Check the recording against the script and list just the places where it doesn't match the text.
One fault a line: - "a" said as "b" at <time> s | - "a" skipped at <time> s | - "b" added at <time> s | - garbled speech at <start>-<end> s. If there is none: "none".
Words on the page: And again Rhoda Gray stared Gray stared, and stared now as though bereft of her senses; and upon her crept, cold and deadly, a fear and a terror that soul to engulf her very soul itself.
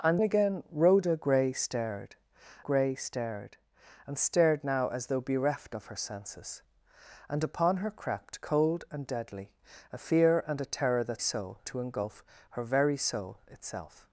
none